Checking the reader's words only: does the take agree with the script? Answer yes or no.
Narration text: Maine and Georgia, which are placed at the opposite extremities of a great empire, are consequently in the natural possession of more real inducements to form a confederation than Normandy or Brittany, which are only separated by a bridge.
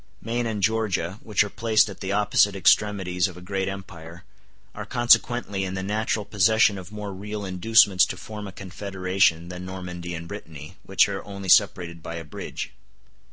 no